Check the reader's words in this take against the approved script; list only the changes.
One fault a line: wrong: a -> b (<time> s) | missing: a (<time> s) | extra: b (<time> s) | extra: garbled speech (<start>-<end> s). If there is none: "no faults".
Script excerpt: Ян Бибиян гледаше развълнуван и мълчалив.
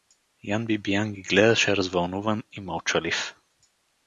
extra: ги (1.1 s)